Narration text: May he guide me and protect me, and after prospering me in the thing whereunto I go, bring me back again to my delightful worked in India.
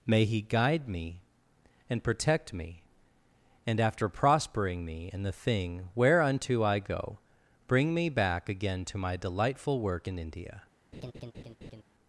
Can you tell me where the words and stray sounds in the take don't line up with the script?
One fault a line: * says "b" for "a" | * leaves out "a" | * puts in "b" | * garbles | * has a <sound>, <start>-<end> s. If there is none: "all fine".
* says "work" for "worked"
* has a laugh, 10.9-11.8 s